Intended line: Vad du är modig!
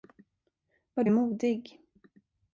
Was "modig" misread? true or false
false